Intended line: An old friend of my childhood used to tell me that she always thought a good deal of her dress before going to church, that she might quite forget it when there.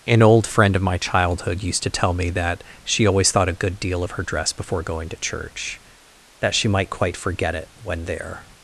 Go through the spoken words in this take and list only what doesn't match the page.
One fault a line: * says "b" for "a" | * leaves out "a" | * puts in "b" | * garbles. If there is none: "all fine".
all fine